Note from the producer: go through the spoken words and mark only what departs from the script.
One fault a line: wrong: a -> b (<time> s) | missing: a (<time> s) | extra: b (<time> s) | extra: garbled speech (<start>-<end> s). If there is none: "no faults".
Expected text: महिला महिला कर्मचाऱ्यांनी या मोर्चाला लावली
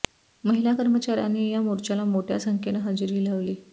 missing: महिला (0.7 s)
extra: मोठ्या संख्येनं हजेरी (2.0 s)